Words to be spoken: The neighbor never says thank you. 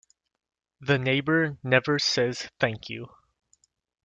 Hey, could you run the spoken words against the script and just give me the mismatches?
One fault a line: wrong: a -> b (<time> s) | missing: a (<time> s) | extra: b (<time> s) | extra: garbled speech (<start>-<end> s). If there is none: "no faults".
no faults